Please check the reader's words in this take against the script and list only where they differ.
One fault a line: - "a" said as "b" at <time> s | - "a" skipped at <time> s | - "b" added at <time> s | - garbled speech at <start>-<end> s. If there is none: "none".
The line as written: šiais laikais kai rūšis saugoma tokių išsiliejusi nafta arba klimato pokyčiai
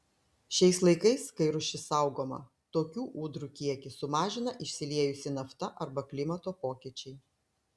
- "ūdrų kiekį sumažina" added at 3.2 s